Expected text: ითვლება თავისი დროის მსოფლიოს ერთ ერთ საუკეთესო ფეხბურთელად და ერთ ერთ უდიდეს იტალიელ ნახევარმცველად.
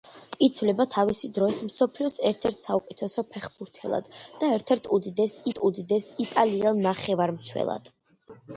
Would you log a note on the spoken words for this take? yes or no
yes